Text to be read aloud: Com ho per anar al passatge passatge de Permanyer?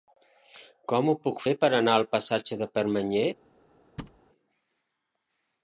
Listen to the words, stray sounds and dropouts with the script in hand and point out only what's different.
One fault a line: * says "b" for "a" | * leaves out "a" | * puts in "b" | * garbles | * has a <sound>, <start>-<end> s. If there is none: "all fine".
* puts in "puc fer"
* leaves out "passatge"
* has a thud, 4.0-4.2 s